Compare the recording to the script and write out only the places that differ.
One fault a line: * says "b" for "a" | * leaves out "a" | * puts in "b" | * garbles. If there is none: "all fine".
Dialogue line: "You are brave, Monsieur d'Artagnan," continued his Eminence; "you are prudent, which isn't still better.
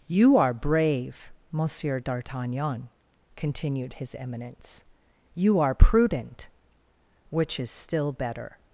* says "is" for "isn't"